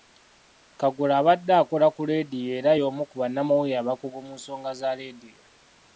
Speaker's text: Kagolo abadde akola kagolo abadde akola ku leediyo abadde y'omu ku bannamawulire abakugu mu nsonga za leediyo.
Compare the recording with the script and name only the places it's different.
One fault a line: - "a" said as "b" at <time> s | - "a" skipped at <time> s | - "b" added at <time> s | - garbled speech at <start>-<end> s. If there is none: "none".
- "kagolo abadde akola" skipped at 1.9 s
- "abadde" said as "era" at 2.6 s